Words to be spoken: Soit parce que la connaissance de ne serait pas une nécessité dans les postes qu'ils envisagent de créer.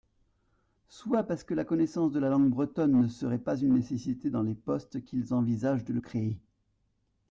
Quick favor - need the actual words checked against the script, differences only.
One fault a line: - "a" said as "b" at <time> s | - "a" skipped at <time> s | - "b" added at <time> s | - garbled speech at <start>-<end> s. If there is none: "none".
- "la langue bretonne" added at 2.2 s